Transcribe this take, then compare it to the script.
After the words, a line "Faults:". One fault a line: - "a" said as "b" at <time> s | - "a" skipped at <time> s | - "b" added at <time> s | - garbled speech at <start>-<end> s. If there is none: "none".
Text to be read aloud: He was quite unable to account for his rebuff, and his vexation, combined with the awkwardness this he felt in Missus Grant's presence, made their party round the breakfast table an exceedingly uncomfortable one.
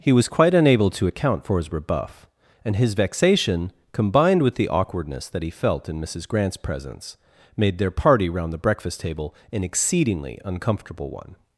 He was quite unable to account for his rebuff, and his vexation, combined with the awkwardness that he felt in Missus Grant's presence, made their party round the breakfast table an exceedingly uncomfortable one.
Faults:
- "this" said as "that" at 5.3 s